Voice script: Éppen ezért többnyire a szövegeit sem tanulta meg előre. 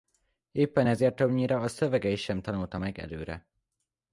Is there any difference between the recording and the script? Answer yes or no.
no